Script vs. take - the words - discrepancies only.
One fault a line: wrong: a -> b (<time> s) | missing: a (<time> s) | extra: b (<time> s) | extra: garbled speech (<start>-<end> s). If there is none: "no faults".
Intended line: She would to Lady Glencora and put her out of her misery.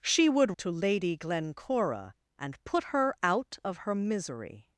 no faults